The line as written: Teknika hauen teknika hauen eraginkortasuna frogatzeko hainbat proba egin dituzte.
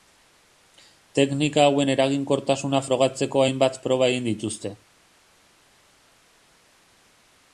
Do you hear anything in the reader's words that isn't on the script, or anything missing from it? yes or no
yes